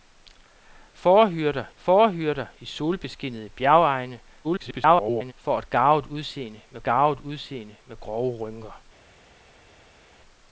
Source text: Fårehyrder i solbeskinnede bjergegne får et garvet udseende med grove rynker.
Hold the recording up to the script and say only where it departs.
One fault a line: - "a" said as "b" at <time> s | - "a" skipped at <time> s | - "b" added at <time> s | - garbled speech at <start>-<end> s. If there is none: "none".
- "fårehyrder" added at 1.8 s
- garbled speech at 4.4-5.3 s
- "garvet udseende med" added at 6.8 s